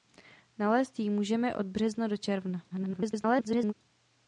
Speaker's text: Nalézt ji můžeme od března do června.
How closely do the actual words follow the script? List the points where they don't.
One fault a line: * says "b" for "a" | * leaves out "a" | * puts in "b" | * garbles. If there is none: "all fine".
* garbles